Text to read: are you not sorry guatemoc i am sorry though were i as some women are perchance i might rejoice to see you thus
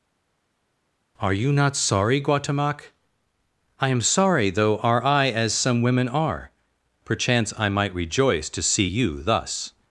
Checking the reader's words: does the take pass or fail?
fail